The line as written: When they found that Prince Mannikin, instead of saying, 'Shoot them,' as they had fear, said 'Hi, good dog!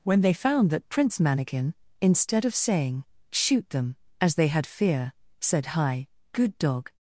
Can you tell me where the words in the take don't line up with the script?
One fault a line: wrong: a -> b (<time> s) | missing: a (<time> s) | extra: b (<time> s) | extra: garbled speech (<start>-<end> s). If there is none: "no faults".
no faults